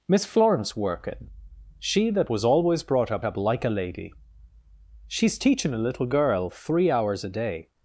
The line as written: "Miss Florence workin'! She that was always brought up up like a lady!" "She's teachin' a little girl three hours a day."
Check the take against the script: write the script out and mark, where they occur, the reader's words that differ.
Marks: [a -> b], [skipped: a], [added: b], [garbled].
"Miss Florence workin'! She that was always brought up up like a lady!" "She's teachin' a little girl three hours a day."